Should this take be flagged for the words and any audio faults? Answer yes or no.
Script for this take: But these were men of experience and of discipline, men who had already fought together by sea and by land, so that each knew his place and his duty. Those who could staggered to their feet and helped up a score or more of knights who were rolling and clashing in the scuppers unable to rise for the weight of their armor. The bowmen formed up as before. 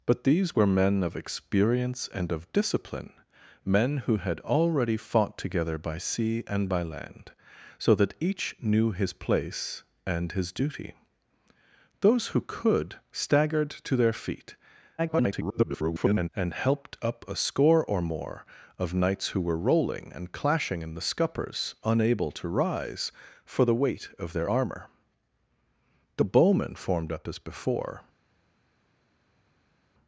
yes